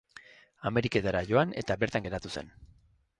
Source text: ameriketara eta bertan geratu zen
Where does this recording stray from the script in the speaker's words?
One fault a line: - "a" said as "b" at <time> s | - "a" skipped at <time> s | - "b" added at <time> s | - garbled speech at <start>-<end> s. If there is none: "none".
- "joan" added at 1.3 s